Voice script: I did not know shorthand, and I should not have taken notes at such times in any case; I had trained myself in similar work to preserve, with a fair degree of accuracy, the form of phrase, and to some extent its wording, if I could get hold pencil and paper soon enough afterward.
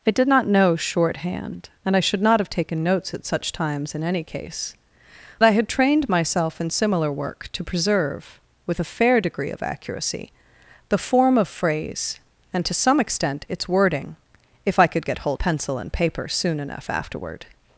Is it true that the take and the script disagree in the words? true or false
false